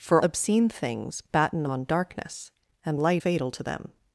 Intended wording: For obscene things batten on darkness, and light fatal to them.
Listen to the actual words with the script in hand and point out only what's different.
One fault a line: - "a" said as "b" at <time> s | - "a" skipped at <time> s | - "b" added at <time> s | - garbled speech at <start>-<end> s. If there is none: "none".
none